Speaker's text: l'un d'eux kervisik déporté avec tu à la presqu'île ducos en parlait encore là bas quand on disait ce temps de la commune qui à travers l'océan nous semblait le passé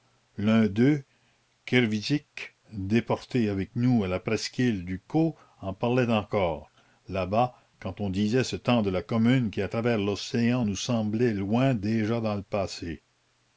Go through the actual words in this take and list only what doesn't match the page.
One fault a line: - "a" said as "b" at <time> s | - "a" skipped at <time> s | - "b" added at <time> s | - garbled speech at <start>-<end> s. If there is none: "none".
- "tu" said as "nous" at 3.8 s
- "loin déjà dans" added at 11.3 s